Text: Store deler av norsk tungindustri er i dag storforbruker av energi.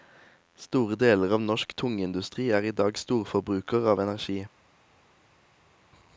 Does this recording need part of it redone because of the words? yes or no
no